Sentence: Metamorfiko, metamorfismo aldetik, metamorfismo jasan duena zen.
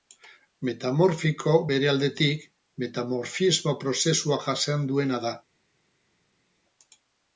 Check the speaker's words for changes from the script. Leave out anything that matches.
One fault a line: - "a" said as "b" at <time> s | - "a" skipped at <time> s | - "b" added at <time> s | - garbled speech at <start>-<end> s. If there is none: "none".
- "metamorfismo" said as "bere" at 1.7 s
- "prozesua" added at 3.9 s
- "zen" said as "da" at 5.3 s